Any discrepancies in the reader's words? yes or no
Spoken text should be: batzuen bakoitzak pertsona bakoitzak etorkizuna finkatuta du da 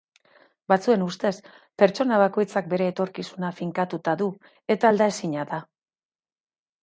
yes